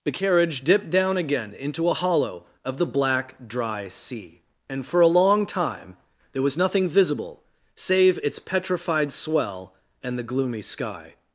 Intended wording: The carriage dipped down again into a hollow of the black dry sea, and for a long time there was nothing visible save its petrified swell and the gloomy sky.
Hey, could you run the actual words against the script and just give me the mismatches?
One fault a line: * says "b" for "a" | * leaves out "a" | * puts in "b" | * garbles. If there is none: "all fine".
all fine